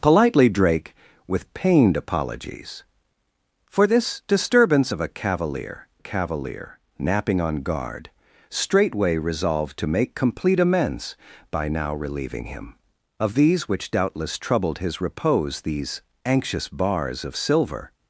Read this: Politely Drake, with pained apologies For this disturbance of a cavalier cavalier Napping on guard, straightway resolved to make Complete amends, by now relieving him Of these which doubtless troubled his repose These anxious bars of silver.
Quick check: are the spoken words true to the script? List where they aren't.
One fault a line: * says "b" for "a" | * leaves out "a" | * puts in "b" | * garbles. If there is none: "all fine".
all fine